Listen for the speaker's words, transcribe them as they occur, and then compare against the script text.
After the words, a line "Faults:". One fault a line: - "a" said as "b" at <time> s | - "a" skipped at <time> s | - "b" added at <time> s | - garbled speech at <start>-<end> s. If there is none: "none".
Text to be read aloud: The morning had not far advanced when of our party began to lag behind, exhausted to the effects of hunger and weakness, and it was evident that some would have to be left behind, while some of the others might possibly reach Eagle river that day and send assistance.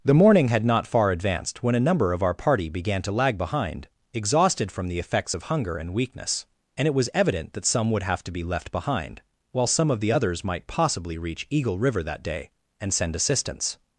The morning had not far advanced when a number of our party began to lag behind, exhausted from the effects of hunger and weakness, and it was evident that some would have to be left behind, while some of the others might possibly reach Eagle river that day and send assistance.
Faults:
- "a number" added at 1.8 s
- "to" said as "from" at 4.7 s